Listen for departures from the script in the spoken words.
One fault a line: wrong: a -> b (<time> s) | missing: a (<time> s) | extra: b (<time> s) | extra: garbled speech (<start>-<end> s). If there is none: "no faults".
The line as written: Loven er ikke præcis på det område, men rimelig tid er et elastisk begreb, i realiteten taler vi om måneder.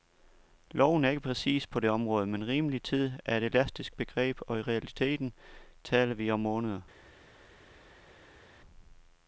extra: og (4.5 s)